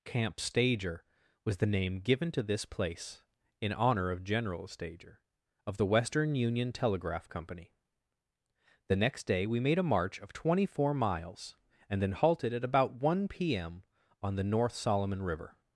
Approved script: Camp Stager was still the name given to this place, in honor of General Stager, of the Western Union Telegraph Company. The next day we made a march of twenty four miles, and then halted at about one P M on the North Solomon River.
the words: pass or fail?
fail